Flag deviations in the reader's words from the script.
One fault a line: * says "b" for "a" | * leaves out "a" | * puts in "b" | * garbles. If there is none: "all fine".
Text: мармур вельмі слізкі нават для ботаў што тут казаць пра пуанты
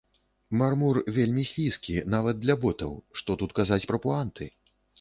all fine